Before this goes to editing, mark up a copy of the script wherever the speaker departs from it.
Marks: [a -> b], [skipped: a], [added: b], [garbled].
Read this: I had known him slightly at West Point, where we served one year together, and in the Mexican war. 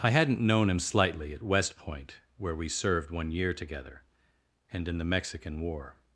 I [had -> hadn't] known him slightly at West Point, where we served one year together, and in the Mexican war.